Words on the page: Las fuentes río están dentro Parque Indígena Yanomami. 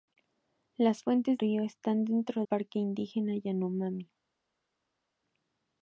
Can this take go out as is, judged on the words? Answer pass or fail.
pass